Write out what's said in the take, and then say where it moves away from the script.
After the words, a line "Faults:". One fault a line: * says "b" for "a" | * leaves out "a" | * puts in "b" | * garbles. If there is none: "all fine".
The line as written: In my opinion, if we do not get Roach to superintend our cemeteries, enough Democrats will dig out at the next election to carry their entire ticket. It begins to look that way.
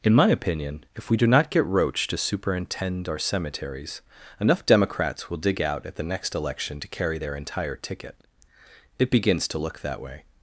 In my opinion, if we do not get Roach to superintend our cemeteries, enough Democrats will dig out at the next election to carry their entire ticket. It begins to look that way.
Faults:
all fine